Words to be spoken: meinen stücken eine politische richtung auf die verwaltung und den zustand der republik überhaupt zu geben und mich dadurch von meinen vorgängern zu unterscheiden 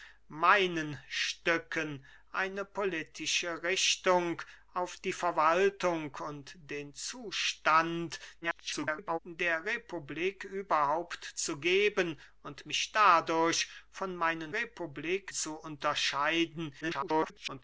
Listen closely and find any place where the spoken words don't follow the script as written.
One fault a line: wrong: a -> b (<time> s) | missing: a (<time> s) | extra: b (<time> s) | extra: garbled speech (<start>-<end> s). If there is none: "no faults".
extra: garbled speech (8.4-9.2 s)
wrong: vorgängern -> republik (14.5 s)
extra: garbled speech (16.8-17.6 s)